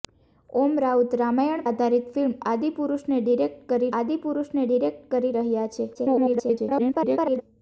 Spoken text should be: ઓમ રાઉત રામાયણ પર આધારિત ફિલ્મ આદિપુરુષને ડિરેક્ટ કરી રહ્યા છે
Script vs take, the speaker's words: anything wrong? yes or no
yes